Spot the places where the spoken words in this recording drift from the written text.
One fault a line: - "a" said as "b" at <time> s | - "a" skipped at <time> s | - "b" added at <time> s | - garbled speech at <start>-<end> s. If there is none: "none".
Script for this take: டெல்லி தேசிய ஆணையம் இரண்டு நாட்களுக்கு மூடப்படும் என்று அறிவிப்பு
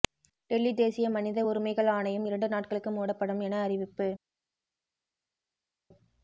- "மனித உரிமைகள்" added at 1.1 s
- "என்று" said as "என" at 3.4 s